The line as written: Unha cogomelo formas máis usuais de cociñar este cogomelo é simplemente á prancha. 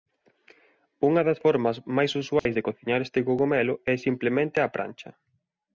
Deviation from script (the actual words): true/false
true